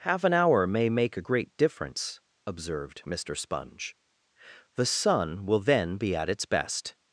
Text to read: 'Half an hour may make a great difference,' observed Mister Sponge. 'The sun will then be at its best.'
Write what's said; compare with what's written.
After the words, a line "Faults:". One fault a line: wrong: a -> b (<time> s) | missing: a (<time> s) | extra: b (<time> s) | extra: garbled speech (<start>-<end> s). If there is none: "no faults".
'Half an hour may make a great difference,' observed Mister Sponge. 'The sun will then be at its best.'
Faults:
no faults